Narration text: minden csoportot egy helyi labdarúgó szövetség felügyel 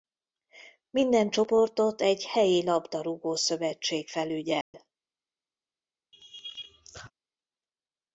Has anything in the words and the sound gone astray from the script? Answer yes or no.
yes